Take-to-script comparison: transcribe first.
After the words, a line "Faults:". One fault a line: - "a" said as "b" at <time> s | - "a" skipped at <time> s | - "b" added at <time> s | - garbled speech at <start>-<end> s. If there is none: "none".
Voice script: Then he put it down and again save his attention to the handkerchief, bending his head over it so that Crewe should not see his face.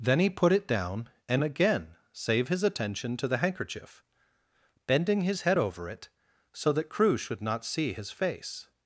Then he put it down and again save his attention to the handkerchief, bending his head over it so that Crewe should not see his face.
Faults:
none